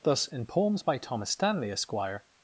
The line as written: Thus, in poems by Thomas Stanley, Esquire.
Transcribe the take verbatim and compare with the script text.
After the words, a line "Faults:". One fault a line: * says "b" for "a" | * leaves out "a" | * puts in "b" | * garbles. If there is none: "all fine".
Thus, in poems by Thomas Stanley, Esquire.
Faults:
all fine